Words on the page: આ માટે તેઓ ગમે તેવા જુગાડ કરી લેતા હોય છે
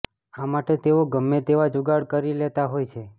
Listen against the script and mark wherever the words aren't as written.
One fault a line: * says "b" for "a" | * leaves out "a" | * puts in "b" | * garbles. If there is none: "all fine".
all fine